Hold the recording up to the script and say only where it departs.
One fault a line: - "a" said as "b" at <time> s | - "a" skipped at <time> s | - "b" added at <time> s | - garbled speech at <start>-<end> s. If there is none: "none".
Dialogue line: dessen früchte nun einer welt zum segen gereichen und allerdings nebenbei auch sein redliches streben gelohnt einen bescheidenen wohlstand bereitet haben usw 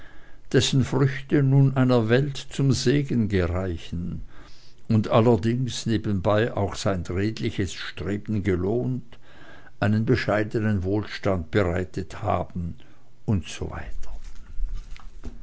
none